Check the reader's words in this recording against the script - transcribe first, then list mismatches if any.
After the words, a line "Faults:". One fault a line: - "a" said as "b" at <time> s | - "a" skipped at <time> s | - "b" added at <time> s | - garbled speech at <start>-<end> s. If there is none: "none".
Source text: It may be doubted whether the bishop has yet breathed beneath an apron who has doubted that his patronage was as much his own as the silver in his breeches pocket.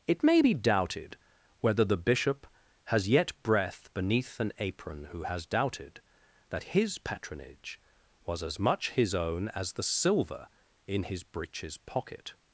It may be doubted whether the bishop has yet breath beneath an apron who has doubted that his patronage was as much his own as the silver in his breeches pocket.
Faults:
- "breathed" said as "breath" at 3.4 s